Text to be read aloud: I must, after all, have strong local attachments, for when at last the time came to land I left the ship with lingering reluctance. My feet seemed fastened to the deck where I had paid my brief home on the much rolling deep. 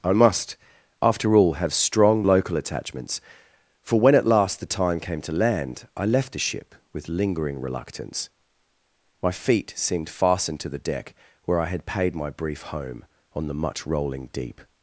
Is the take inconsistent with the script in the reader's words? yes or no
no